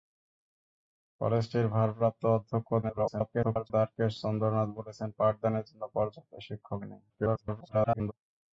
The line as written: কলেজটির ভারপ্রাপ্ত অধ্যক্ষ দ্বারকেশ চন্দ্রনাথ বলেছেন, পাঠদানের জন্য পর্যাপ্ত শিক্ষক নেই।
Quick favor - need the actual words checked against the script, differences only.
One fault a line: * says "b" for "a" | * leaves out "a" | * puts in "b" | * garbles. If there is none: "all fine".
* garbles
* garbles